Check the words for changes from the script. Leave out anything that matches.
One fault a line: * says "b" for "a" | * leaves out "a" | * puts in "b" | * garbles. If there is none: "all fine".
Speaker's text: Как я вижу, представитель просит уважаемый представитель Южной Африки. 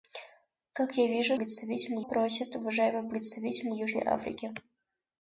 all fine